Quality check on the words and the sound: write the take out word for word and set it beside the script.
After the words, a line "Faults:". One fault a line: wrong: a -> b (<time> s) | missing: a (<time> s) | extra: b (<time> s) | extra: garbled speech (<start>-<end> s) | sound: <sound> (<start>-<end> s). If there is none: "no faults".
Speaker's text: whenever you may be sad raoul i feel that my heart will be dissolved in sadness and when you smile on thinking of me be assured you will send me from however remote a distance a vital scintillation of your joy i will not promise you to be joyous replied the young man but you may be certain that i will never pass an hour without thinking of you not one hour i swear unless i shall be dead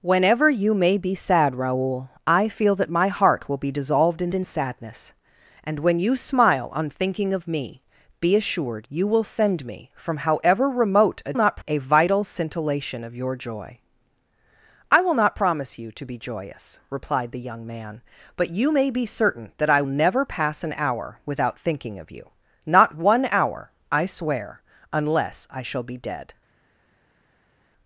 whenever you may be sad raoul i feel that my heart will be dissolved in in sadness and when you smile on thinking of me be assured you will send me from however remote a not a vital scintillation of your joy i will not promise you to be joyous replied the young man but you may be certain that i never pass an hour without thinking of you not one hour i swear unless i shall be dead
Faults:
extra: in (4.3 s)
wrong: distance -> not (11.3 s)
missing: will (19.8 s)